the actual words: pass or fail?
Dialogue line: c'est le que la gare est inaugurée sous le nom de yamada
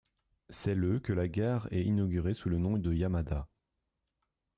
pass